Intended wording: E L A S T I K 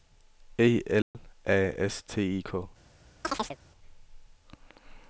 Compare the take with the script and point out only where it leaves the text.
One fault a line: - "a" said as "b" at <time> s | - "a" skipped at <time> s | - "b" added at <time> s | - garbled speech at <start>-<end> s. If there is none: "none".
none